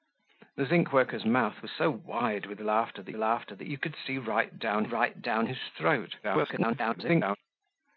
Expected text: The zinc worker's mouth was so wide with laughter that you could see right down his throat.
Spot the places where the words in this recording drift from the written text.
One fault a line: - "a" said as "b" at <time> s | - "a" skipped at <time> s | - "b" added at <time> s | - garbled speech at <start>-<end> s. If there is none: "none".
- "laughter that" added at 3.2 s
- "right down" added at 4.8 s
- garbled speech at 6.2-7.4 s